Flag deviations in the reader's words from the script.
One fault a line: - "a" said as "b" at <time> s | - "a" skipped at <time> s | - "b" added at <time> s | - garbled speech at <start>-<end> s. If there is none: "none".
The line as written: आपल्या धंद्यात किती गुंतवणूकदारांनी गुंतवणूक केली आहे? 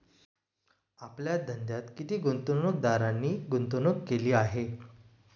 none